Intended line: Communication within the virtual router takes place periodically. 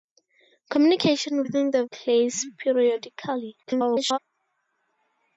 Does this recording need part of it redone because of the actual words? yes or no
yes